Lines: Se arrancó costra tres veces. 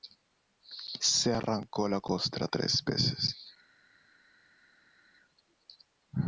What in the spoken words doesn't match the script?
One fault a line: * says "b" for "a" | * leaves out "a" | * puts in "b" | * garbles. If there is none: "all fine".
* puts in "la"